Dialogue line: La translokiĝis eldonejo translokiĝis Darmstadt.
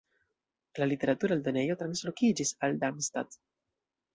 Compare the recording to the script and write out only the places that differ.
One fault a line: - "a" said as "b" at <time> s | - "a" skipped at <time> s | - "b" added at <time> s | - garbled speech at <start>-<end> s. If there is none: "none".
- "translokiĝis" said as "literatura" at 0.9 s
- "al" added at 2.7 s